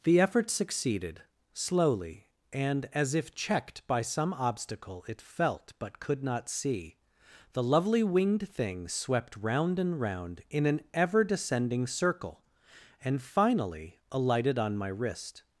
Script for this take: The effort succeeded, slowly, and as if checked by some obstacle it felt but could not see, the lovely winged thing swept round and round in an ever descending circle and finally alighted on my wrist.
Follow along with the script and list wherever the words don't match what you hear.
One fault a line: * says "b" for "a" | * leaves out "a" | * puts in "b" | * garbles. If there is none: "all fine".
all fine